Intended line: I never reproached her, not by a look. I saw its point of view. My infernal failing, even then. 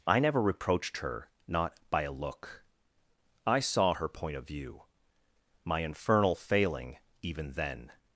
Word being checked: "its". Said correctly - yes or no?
no